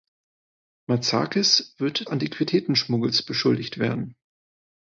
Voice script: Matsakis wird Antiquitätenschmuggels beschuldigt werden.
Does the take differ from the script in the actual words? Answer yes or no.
no